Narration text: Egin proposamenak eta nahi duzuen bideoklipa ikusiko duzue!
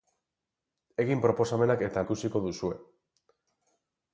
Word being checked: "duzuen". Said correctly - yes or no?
no